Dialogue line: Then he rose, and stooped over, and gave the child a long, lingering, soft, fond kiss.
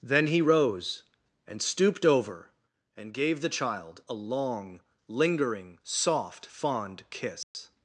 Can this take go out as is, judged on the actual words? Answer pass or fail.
pass